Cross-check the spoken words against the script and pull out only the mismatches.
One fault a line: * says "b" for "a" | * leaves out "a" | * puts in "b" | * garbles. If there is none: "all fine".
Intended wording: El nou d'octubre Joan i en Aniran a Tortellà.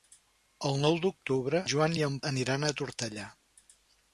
all fine